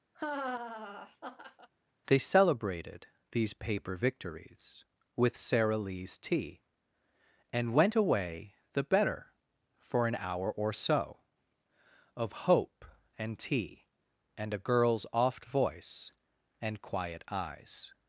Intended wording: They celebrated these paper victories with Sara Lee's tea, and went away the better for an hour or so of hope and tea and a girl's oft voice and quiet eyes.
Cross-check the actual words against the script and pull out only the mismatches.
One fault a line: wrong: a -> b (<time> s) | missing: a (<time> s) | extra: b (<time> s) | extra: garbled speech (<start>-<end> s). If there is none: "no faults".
no faults